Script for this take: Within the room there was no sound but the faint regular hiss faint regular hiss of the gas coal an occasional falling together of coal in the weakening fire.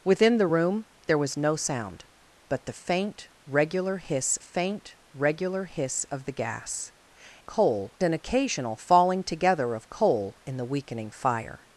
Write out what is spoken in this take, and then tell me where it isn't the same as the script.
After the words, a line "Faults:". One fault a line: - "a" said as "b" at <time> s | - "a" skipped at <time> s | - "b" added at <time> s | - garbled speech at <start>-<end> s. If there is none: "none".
Within the room there was no sound but the faint regular hiss faint regular hiss of the gas coal an occasional falling together of coal in the weakening fire.
Faults:
none